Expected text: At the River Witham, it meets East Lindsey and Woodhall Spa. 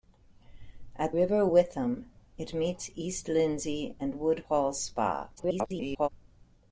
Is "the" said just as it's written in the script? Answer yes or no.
no